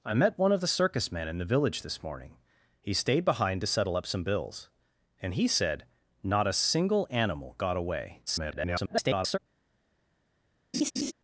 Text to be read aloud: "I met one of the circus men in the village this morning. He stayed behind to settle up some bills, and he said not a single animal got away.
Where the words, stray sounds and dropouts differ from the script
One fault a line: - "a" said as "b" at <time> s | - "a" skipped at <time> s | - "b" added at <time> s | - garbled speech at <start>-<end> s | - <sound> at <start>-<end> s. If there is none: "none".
- garbled speech at 8.3-9.4 s
- laugh at 10.7-11.1 s